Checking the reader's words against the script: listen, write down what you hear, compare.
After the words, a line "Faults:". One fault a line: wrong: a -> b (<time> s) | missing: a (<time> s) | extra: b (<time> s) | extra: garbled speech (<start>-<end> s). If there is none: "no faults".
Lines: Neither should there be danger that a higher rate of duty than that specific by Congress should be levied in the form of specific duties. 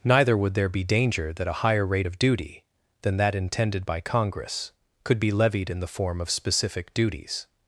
Neither would there be danger that a higher rate of duty than that intended by Congress could be levied in the form of specific duties.
Faults:
wrong: should -> would (0.3 s)
wrong: specific -> intended (3.3 s)
wrong: should -> could (5.0 s)